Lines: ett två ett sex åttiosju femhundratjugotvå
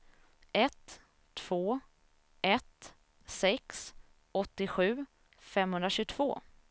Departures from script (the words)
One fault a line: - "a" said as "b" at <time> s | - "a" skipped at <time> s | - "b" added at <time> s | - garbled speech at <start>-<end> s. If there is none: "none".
none